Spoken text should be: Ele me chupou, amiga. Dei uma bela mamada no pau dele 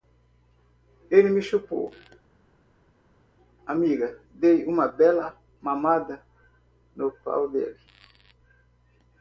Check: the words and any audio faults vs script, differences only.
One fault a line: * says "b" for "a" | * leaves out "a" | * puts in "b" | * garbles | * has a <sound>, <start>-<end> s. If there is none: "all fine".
all fine